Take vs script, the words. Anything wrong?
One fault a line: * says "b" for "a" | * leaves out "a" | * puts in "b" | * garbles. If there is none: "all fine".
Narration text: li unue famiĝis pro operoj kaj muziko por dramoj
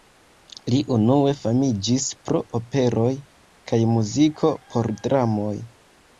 all fine